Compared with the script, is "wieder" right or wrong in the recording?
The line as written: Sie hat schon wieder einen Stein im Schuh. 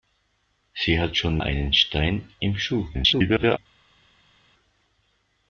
wrong